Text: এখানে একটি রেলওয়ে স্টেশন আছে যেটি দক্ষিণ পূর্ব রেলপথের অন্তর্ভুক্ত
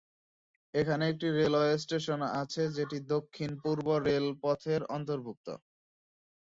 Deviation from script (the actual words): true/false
false